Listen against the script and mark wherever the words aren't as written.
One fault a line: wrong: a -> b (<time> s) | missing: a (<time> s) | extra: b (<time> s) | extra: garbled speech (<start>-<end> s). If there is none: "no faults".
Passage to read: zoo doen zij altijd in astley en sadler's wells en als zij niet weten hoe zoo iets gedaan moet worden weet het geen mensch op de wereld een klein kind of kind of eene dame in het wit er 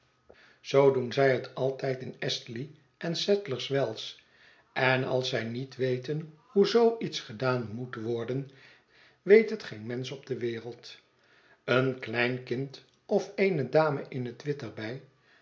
extra: het (1.3 s)
missing: kind of (13.3 s)